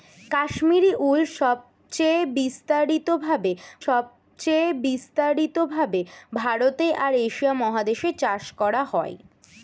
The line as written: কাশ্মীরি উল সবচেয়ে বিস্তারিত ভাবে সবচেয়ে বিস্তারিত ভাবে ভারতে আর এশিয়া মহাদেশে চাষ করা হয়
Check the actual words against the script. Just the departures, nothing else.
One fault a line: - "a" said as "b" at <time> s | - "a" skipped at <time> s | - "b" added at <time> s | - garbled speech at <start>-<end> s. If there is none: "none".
none